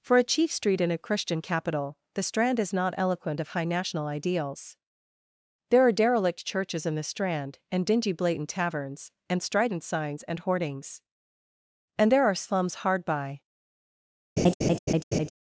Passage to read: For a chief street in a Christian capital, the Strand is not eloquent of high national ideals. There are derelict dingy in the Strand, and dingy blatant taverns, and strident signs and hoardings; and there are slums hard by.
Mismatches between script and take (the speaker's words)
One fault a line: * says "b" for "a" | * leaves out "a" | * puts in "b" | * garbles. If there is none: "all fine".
* says "churches" for "dingy"